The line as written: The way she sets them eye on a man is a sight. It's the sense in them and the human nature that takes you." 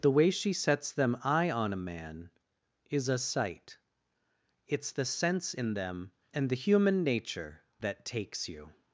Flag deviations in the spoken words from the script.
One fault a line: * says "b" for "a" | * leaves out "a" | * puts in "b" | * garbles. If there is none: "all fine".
all fine